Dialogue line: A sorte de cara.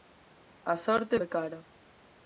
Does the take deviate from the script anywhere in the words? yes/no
no